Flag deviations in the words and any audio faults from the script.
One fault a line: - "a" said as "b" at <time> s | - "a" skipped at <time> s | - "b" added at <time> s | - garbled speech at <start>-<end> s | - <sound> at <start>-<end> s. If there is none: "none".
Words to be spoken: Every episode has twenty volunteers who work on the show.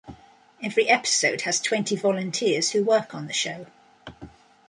none